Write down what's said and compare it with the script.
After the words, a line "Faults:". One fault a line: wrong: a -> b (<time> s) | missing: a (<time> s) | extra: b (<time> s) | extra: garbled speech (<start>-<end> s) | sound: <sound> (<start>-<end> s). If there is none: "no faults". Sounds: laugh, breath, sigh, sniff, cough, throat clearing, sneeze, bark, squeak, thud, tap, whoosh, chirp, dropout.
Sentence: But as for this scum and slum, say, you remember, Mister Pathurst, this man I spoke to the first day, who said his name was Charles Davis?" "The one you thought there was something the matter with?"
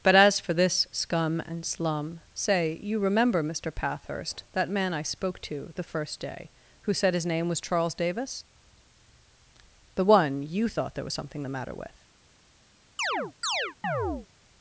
But as for this scum and slum, say, you remember, Mister Pathurst, that man I spoke to the first day, who said his name was Charles Davis?" "The one you thought there was something the matter with?"
Faults:
wrong: this -> that (4.5 s)
sound: chirp (13.0-14.3 s)